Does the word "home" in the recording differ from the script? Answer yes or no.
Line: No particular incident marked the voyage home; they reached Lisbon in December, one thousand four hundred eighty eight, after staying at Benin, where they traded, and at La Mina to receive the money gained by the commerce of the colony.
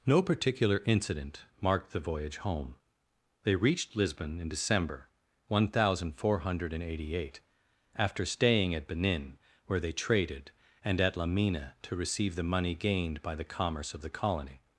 no